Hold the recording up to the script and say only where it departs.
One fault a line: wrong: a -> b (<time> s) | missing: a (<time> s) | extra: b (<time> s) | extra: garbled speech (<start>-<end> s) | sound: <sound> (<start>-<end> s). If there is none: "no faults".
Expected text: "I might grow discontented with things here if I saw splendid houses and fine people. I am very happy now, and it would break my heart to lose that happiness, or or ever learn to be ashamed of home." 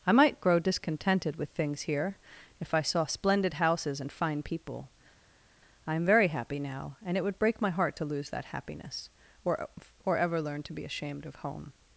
no faults